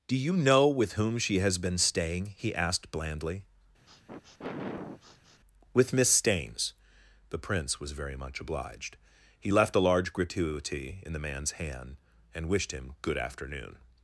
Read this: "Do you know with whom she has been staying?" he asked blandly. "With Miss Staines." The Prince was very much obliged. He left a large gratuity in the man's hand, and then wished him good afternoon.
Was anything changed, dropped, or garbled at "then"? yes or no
yes